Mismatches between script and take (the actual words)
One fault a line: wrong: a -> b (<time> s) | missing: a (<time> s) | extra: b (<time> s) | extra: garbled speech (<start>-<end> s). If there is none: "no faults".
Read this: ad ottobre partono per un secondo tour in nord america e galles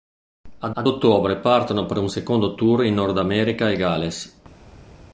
extra: ad (0.7 s)